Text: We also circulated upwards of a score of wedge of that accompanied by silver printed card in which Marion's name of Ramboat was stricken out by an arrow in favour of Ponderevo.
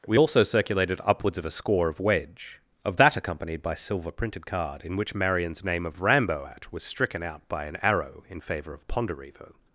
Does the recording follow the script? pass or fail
pass